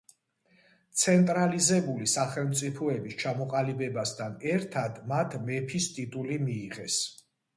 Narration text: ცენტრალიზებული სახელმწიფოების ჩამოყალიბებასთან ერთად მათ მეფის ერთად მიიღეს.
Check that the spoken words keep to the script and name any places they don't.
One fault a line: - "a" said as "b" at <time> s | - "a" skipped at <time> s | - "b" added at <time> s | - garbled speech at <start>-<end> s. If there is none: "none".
- "ერთად" said as "ტიტული" at 6.0 s